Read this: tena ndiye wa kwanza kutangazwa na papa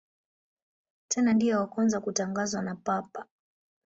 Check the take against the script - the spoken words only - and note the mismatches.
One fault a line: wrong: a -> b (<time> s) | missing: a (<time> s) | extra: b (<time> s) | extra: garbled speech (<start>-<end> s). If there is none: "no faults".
no faults